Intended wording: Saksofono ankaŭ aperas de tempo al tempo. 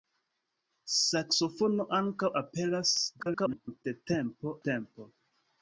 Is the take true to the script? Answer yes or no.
no